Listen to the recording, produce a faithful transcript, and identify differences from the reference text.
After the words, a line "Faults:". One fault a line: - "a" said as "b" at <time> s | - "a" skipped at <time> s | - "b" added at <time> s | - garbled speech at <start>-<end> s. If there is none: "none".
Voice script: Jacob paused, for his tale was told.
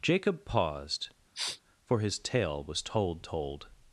Jacob paused, for his tale was told told.
Faults:
- "told" added at 3.2 s